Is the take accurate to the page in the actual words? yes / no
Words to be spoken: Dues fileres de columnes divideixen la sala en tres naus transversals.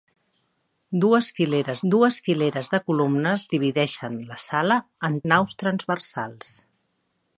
no